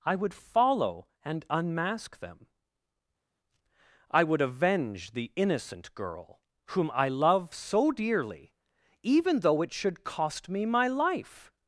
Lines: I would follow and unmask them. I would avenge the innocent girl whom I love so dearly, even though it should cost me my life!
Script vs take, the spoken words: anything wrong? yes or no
no